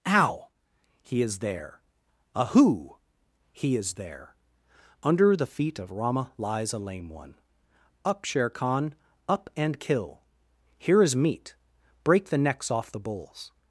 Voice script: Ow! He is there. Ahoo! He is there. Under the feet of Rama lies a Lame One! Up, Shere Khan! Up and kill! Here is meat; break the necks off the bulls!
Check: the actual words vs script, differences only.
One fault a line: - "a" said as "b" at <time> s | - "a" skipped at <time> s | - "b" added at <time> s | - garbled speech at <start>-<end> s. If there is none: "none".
none